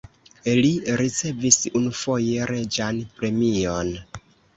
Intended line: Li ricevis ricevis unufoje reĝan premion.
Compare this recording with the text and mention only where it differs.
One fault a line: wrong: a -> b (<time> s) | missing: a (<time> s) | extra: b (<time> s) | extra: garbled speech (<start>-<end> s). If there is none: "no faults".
missing: ricevis (1.6 s)